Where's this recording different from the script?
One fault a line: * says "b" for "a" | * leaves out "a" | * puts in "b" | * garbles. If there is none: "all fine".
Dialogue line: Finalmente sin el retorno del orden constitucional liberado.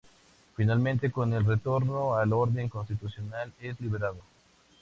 * says "con" for "sin"
* says "al" for "del"
* puts in "es"